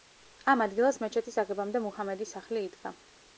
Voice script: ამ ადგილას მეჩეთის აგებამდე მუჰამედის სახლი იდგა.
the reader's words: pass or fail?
pass